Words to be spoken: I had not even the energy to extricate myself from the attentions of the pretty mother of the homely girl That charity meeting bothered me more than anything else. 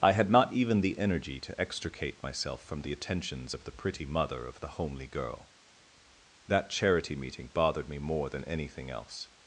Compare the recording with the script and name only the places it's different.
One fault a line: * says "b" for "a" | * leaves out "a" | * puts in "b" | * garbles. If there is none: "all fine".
all fine